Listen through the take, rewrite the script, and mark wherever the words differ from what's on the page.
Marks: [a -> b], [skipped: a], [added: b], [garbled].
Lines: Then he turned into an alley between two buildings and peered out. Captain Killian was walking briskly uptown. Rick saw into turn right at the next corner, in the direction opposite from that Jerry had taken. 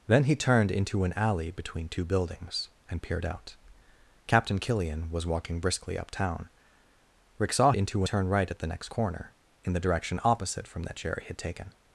Then he turned into an alley between two buildings and peered out. Captain Killian was walking briskly uptown. Rick saw into turn right at the next corner, in the direction opposite from that Jerry had taken.